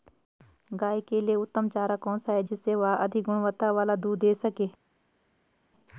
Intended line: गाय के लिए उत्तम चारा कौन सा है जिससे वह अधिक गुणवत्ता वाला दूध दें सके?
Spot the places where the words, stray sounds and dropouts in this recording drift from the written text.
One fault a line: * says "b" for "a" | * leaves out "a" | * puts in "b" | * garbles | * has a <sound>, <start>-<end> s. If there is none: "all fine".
all fine